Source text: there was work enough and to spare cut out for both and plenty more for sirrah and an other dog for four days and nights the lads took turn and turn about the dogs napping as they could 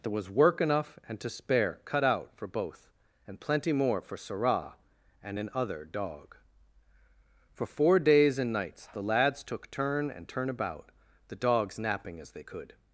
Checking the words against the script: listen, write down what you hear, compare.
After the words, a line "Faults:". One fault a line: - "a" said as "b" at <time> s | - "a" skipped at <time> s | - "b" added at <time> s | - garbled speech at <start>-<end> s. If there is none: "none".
there was work enough and to spare cut out for both and plenty more for sirrah and an other dog for four days and nights the lads took turn and turn about the dogs napping as they could
Faults:
none